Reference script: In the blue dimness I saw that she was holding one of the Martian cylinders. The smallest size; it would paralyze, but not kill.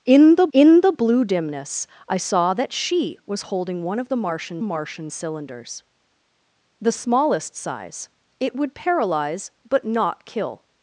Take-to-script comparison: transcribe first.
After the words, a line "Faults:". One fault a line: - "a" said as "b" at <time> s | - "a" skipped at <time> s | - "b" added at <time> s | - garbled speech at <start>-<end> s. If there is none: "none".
In the in the blue dimness I saw that she was holding one of the Martian Martian cylinders. The smallest size; it would paralyze, but not kill.
Faults:
- "in the" added at 0.5 s
- "Martian" added at 4.6 s